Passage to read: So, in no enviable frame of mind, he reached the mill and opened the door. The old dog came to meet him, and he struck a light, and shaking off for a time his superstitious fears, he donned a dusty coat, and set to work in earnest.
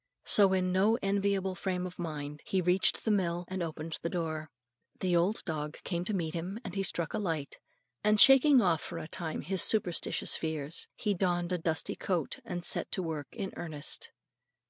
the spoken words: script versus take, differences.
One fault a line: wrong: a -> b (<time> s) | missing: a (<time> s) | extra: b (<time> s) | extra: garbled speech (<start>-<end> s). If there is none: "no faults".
no faults